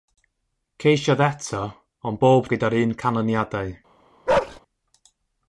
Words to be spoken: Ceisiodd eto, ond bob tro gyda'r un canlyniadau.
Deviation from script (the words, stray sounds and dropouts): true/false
true